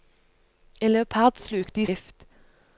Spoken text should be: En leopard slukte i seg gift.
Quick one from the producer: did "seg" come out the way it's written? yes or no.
no